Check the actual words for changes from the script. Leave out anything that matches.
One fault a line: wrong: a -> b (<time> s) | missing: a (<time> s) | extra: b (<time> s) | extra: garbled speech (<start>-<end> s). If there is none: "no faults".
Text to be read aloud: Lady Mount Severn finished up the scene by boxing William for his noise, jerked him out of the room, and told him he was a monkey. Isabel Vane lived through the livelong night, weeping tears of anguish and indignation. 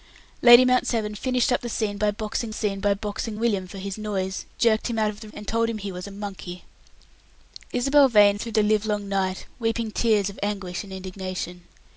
extra: scene by boxing (2.5 s)
missing: room (5.3 s)
missing: lived (8.4 s)